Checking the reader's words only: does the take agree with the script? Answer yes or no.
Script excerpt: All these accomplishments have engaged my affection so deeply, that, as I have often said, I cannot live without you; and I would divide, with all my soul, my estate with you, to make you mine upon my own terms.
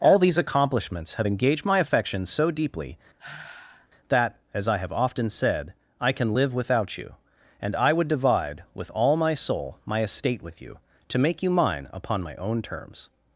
no